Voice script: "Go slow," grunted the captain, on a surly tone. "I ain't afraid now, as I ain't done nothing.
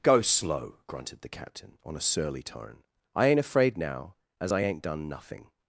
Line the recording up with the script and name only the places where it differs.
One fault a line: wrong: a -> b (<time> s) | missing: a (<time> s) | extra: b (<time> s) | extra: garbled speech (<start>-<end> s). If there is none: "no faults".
no faults